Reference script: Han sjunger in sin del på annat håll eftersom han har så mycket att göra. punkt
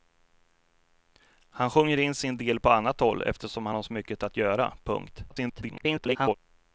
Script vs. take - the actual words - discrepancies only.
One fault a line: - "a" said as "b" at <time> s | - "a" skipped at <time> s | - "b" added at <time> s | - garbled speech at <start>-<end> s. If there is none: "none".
- garbled speech at 5.3-6.3 s